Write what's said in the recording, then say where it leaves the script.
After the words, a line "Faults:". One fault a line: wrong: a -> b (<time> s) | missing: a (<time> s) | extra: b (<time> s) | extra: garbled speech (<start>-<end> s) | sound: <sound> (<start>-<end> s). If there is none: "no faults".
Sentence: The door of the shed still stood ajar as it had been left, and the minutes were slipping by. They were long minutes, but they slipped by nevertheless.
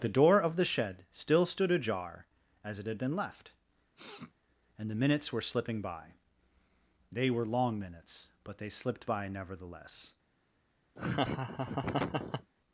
The door of the shed still stood ajar as it had been left, and the minutes were slipping by. They were long minutes, but they slipped by nevertheless.
Faults:
sound: sniff (4.0-4.3 s)
sound: laugh (11.0-12.5 s)